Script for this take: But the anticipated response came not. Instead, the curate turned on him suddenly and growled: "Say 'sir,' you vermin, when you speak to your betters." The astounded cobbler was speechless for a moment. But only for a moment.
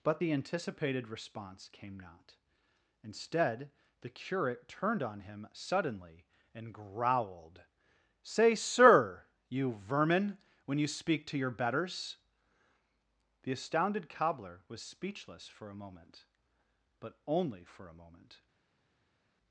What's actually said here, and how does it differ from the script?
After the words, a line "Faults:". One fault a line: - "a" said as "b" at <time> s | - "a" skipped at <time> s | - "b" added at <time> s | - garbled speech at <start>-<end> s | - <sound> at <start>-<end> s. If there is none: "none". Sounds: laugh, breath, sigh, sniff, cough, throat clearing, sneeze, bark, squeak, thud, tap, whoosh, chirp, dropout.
But the anticipated response came not. Instead, the curate turned on him suddenly and growled: "Say 'sir,' you vermin, when you speak to your betters." The astounded cobbler was speechless for a moment. But only for a moment.
Faults:
none